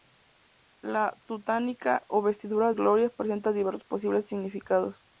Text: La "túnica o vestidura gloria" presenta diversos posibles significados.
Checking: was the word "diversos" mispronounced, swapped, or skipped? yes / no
no